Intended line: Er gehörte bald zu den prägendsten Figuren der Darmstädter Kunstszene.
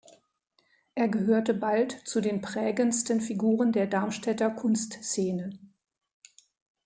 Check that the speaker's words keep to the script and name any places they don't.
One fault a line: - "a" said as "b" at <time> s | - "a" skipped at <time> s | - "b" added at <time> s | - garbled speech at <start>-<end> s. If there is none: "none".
none